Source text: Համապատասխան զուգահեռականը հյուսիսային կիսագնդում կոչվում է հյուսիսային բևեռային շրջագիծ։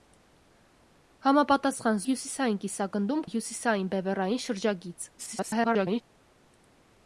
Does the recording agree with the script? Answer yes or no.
no